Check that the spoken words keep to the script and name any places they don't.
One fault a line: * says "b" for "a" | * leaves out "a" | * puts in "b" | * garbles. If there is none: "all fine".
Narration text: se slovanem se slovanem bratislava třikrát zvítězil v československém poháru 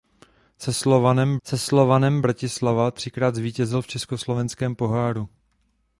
all fine